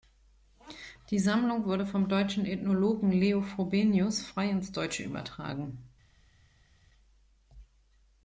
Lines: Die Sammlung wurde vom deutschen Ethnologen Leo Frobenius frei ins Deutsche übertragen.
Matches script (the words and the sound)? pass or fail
pass